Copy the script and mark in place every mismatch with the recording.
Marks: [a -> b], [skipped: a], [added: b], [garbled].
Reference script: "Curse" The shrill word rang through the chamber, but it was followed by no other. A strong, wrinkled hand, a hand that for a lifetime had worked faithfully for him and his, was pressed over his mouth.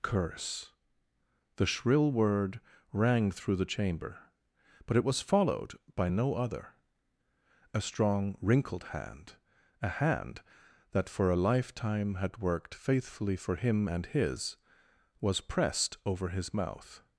"Curse" The shrill word rang through the chamber, but it was followed by no other. A strong, wrinkled hand, a hand that for a lifetime had worked faithfully for him and his, was pressed over his mouth.